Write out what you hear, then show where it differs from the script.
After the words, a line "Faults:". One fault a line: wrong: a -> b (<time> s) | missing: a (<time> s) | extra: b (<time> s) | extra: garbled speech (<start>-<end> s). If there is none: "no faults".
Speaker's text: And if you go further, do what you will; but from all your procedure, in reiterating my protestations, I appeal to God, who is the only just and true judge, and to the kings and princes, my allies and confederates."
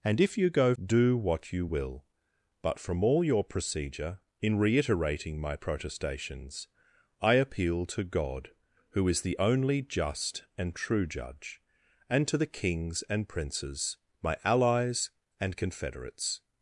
And if you go do what you will; but from all your procedure, in reiterating my protestations, I appeal to God, who is the only just and true judge, and to the kings and princes, my allies and confederates."
Faults:
missing: further (0.8 s)